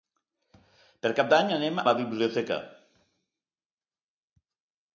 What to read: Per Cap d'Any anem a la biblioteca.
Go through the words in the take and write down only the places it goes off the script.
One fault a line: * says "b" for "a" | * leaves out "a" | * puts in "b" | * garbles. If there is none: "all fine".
* leaves out "a"